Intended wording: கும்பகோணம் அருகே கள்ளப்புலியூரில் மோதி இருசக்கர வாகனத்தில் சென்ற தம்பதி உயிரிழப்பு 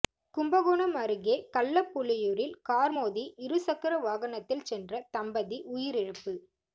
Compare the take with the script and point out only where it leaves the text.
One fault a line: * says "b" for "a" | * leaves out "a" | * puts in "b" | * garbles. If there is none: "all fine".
* puts in "கார்"